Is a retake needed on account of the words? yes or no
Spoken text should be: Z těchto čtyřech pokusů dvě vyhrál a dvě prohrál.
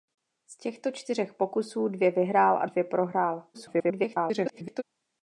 yes